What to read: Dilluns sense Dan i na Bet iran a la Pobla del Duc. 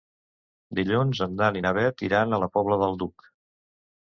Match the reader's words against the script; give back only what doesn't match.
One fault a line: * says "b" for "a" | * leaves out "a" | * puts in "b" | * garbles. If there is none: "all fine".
* says "en" for "sense"